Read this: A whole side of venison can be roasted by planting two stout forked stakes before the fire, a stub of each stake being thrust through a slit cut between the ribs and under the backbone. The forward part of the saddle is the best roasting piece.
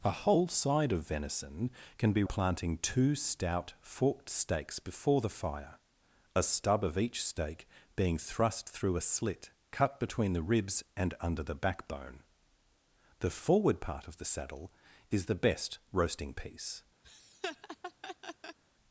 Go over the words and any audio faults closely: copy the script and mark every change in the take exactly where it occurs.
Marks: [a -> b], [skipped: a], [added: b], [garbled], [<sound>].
A whole side of venison can be [skipped: roasted by] planting two stout forked stakes before the fire, a stub of each stake being thrust through a slit cut between the ribs and under the backbone. The forward part of the saddle is the best roasting piece. [laugh]